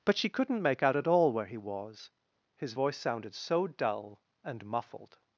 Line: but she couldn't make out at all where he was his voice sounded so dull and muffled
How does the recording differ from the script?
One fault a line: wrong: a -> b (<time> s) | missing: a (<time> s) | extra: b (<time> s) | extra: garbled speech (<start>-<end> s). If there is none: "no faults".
no faults